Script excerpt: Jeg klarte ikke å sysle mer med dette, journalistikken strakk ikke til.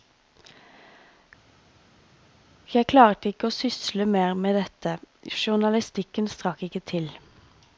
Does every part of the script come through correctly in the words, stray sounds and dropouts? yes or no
yes